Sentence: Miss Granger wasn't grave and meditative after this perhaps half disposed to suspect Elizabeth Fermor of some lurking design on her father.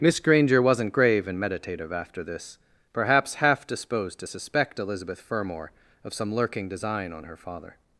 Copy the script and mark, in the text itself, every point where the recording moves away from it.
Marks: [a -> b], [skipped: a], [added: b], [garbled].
Miss Granger wasn't grave and meditative after this perhaps half disposed to suspect Elizabeth Fermor of some lurking design on her father.